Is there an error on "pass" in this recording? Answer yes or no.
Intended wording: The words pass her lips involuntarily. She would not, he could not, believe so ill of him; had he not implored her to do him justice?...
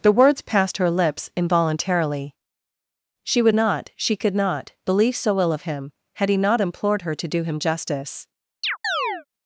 yes